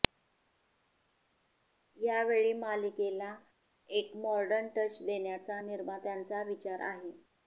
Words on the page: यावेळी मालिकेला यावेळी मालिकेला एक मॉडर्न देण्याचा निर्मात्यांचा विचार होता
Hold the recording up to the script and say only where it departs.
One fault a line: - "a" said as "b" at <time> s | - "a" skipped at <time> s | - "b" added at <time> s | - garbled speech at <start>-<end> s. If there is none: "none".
- "यावेळी मालिकेला" skipped at 3.3 s
- "टच" added at 4.8 s
- "होता" said as "आहे" at 6.9 s